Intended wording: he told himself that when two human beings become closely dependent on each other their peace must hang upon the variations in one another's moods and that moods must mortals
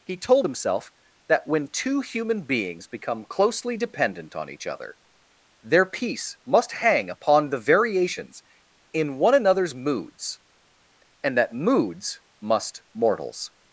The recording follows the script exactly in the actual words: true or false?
true